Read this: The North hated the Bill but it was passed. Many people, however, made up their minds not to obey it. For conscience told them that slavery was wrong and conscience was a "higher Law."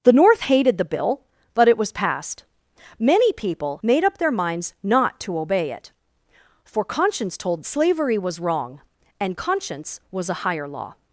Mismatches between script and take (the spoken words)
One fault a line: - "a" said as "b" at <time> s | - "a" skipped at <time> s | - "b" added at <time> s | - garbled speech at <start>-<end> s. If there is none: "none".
- "however" skipped at 3.8 s
- "them that" skipped at 7.6 s